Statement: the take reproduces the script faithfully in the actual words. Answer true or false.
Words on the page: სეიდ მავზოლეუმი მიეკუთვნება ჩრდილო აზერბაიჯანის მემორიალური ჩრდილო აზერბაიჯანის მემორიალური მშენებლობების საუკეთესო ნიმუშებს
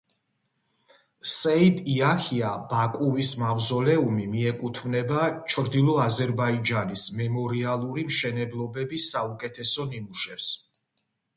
false